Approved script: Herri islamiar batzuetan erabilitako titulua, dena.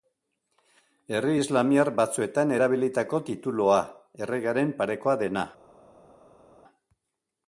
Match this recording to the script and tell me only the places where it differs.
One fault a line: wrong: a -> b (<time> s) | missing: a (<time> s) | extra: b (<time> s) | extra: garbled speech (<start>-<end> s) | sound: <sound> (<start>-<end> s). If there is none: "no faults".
extra: erregearen parekoa (4.3 s)